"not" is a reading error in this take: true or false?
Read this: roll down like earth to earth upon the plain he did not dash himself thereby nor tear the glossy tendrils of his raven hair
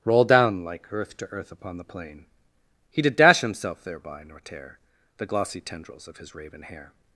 true